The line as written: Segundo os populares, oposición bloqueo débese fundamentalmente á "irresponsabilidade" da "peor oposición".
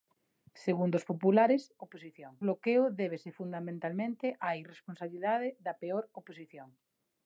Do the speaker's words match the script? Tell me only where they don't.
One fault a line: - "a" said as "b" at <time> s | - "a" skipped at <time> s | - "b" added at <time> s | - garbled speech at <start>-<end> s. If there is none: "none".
none